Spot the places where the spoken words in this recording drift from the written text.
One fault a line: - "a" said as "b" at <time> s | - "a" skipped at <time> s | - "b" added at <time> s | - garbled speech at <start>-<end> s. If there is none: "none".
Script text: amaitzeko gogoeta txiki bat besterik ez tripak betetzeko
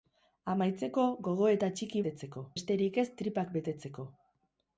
- "bat" said as "betetzeko" at 2.0 s